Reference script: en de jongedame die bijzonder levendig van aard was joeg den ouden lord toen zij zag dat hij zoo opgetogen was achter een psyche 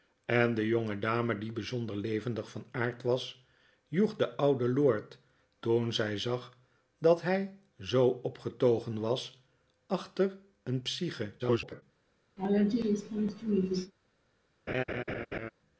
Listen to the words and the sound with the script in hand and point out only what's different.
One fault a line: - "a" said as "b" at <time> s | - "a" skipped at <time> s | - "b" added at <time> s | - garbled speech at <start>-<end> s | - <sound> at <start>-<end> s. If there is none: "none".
- garbled speech at 11.4-11.8 s
- laugh at 12.4-13.9 s
- laugh at 14.7-15.5 s